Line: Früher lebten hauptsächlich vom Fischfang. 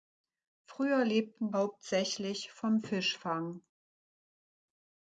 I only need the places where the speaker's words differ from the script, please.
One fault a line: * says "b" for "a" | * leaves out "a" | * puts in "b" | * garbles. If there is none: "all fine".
all fine